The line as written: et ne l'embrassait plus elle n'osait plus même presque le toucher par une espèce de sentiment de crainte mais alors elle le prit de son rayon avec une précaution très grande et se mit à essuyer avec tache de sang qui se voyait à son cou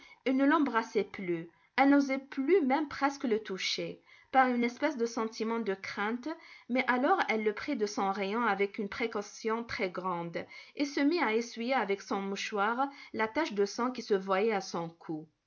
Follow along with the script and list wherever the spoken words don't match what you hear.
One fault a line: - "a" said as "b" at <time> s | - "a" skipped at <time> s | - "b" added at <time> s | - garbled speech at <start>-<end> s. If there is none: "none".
- "son mouchoir la" added at 12.0 s